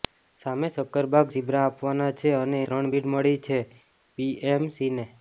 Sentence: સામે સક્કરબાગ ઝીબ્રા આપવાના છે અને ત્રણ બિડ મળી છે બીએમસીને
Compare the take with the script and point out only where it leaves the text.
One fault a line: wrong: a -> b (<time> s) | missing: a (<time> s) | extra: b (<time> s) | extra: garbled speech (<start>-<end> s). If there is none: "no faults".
no faults